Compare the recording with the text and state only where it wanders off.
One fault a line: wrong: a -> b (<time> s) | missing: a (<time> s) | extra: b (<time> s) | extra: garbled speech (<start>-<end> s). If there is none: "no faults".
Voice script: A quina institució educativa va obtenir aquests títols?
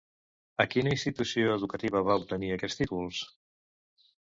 no faults